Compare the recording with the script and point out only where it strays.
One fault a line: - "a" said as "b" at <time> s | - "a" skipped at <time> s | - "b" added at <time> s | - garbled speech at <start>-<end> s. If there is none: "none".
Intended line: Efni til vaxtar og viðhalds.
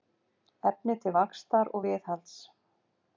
none